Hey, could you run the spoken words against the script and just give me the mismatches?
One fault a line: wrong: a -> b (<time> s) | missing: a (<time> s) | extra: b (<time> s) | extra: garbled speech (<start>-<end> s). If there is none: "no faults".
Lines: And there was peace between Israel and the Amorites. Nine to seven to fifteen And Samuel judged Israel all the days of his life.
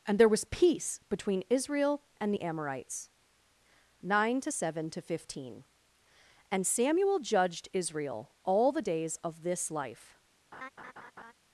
wrong: his -> this (9.4 s)